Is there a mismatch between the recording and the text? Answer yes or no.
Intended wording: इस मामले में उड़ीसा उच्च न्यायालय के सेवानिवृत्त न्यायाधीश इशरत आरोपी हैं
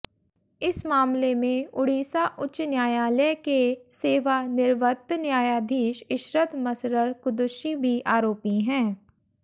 yes